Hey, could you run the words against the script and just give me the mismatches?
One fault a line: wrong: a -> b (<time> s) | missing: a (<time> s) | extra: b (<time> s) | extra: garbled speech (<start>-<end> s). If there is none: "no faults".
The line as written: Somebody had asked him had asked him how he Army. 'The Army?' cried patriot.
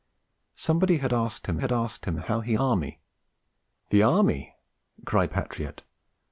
no faults